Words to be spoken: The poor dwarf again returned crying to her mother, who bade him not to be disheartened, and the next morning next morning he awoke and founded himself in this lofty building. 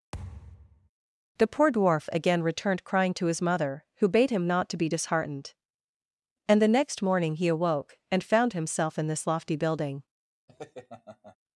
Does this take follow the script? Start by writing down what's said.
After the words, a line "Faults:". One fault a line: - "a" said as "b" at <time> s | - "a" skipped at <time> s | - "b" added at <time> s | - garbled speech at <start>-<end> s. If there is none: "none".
The poor dwarf again returned crying to his mother, who bade him not to be disheartened, and the next morning he awoke and found himself in this lofty building.
Faults:
- "her" said as "his" at 3.3 s
- "next morning" skipped at 7.4 s
- "founded" said as "found" at 8.2 s